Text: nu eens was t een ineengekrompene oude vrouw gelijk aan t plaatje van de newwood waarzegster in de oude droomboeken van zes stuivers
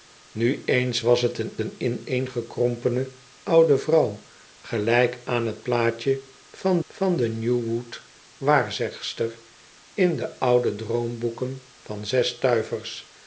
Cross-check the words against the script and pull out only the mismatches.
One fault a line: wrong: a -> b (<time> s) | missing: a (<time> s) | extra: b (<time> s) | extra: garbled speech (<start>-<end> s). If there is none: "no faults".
extra: een (1.6 s)
extra: van (6.9 s)